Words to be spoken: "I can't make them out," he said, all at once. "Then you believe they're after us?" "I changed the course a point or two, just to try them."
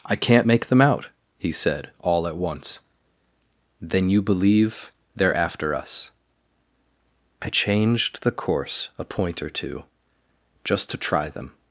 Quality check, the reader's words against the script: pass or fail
pass